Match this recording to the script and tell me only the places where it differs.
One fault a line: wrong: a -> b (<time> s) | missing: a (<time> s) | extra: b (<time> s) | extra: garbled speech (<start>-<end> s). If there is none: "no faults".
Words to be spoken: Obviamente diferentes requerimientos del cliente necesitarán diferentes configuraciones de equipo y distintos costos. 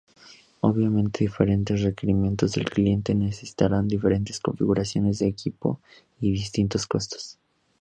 no faults